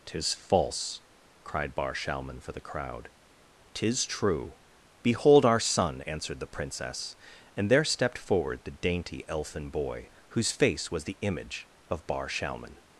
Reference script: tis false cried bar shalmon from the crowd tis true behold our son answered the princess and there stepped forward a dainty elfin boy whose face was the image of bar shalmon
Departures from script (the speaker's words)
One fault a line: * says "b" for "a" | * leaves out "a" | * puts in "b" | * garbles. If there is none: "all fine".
* says "for" for "from"
* says "the" for "a"